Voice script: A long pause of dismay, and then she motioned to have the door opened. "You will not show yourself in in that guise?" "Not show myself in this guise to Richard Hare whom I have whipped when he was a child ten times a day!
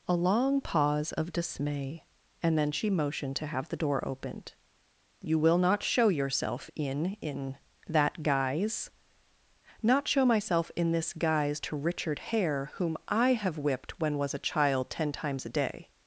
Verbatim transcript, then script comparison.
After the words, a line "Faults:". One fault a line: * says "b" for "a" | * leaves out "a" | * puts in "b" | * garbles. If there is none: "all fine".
A long pause of dismay, and then she motioned to have the door opened. "You will not show yourself in in that guise?" "Not show myself in this guise to Richard Hare whom I have whipped when was a child ten times a day!
Faults:
* leaves out "he"